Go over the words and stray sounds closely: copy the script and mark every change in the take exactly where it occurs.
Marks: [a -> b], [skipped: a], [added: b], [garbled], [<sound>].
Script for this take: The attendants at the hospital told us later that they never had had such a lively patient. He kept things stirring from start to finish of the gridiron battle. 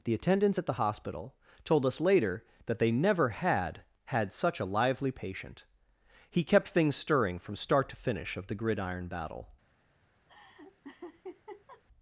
The attendants at the hospital told us later that they never had had such a lively patient. He kept things stirring from start to finish of the gridiron battle. [laugh]